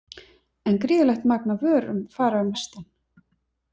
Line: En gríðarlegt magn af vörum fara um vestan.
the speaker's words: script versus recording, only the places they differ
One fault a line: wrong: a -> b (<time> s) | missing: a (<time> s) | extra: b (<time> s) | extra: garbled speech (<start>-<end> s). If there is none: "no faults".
no faults